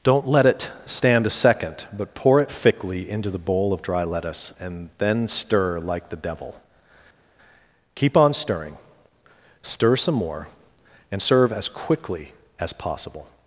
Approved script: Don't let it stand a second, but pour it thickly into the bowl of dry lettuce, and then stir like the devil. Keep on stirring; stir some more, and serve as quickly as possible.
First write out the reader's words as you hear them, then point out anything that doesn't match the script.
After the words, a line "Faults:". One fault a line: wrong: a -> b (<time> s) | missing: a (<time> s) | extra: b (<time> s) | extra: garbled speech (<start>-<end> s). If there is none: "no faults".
Don't let it stand a second, but pour it thickly into the bowl of dry lettuce, and then stir like the devil. Keep on stirring; stir some more, and serve as quickly as possible.
Faults:
no faults